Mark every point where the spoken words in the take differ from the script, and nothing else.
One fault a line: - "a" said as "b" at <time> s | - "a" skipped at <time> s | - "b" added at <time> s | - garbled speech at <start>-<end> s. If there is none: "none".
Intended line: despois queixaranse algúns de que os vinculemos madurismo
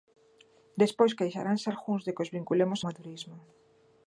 none